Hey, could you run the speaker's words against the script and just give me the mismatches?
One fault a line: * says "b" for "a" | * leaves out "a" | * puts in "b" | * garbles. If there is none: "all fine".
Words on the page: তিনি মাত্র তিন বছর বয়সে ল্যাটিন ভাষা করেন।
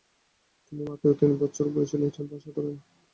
all fine